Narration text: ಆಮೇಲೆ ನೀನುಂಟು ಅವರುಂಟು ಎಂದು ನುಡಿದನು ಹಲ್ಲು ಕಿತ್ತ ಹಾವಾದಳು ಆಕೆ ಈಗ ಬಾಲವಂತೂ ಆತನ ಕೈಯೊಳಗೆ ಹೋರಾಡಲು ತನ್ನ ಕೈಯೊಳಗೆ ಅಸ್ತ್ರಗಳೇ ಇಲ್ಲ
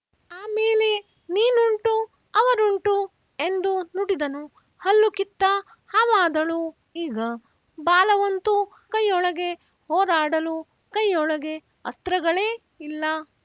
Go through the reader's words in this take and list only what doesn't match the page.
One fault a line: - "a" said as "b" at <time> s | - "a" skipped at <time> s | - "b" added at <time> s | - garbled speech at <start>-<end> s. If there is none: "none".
- "ಆಕೆ" skipped at 6.6 s
- "ಆತನ" skipped at 8.6 s
- "ತನ್ನ" skipped at 10.6 s